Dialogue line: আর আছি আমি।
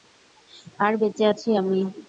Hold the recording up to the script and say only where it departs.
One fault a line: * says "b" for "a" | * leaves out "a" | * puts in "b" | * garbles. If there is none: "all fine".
* puts in "বেঁচে"